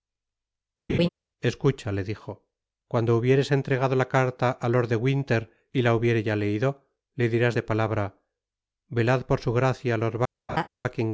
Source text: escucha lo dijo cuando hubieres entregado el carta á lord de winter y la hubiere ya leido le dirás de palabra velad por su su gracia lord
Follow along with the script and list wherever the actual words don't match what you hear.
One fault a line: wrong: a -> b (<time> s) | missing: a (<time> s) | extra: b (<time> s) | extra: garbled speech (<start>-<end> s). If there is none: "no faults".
wrong: lo -> le (1.9 s)
wrong: el -> la (4.0 s)
missing: su (9.5 s)